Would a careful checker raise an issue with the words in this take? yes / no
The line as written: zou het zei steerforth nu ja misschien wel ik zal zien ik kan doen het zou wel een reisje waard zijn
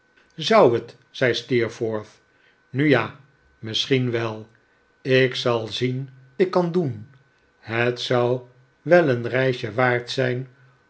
no